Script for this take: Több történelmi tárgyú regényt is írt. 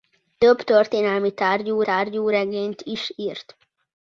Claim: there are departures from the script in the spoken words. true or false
true